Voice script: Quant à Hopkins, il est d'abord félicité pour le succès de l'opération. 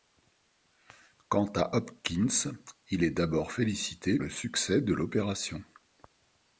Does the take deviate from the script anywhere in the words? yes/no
yes